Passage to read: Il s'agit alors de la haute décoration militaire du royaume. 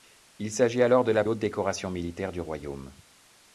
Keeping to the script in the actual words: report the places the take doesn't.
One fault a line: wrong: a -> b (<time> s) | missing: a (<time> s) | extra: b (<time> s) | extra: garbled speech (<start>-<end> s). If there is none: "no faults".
no faults